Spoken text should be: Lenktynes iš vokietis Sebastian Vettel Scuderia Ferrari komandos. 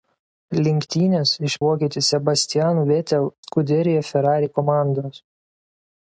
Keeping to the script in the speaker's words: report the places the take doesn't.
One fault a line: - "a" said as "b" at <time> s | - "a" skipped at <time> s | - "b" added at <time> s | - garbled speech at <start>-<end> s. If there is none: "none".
none